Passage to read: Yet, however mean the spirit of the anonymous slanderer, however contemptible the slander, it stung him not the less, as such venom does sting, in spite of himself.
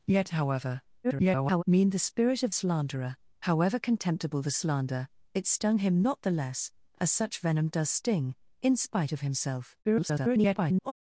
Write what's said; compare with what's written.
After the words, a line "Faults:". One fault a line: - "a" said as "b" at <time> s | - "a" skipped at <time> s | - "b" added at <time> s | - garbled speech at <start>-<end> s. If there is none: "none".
Yet, however [garbled] mean the spirit of slanderer, however contemptible the slander, it stung him not the less, as such venom does sting, in spite of himself. [garbled]
Faults:
- garbled speech at 1.0-1.6 s
- "the anonymous" skipped at 2.5 s
- garbled speech at 9.8-10.9 s